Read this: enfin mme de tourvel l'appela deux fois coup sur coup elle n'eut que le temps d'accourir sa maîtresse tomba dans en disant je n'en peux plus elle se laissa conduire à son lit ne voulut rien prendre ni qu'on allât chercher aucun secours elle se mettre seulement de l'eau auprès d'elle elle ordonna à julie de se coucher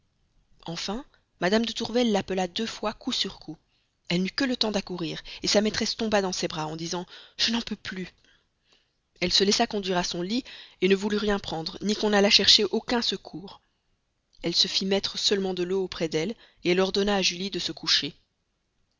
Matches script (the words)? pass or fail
fail